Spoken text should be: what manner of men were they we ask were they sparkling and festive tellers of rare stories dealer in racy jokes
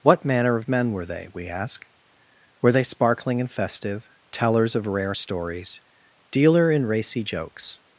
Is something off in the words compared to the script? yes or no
no